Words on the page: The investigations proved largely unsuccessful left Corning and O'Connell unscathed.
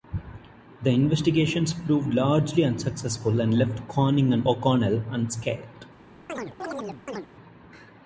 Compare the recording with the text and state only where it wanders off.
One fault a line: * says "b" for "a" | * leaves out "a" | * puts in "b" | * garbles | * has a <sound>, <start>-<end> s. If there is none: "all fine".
* puts in "and"
* has a chirp, 6.3-7.3 s